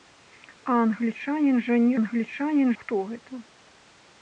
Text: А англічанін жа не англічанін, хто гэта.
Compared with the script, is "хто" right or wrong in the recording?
right